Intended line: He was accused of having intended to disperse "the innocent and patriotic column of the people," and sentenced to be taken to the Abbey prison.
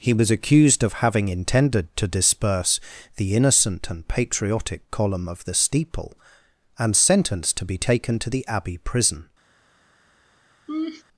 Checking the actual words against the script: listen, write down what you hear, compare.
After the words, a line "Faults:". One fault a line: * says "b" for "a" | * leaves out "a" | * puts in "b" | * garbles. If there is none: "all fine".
He was accused of having intended to disperse "the innocent and patriotic column of the steeple," and sentenced to be taken to the Abbey prison.
Faults:
* says "steeple" for "people"